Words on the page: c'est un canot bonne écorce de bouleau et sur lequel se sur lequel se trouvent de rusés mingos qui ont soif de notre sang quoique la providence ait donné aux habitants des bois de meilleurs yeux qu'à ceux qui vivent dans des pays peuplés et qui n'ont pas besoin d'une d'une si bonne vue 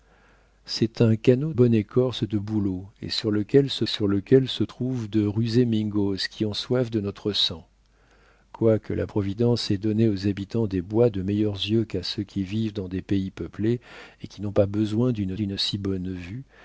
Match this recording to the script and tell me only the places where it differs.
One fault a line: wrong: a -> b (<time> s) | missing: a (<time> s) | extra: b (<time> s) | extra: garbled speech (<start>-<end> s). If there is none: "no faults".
no faults